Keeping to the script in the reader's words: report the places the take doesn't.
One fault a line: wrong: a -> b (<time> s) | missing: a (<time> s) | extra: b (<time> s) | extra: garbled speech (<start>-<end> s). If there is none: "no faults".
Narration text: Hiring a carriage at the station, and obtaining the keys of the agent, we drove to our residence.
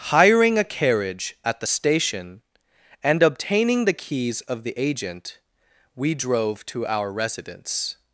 no faults